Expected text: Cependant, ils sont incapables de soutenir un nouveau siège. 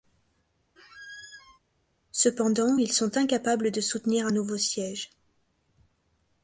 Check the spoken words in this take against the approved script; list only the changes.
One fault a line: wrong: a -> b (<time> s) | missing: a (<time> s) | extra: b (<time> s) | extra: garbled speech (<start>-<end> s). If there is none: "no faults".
no faults